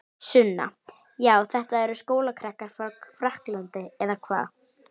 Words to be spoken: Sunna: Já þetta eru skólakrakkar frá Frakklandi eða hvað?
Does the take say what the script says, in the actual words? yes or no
yes